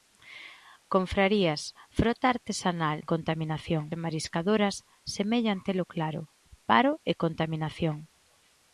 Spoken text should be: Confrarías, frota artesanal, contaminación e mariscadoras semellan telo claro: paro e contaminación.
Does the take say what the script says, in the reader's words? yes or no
yes